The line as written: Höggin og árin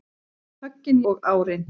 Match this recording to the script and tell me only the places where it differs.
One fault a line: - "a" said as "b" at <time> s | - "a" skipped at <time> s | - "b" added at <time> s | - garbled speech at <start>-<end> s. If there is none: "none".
none